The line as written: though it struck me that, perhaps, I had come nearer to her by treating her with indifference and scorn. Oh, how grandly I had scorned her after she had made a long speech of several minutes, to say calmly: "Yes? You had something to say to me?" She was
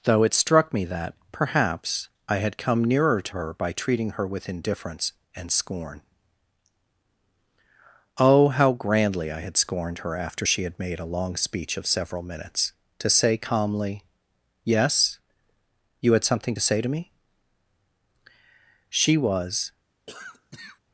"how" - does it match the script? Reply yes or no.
yes